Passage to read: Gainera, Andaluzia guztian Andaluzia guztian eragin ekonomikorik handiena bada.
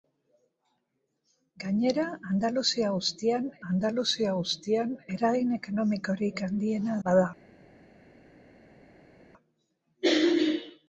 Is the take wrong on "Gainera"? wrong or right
right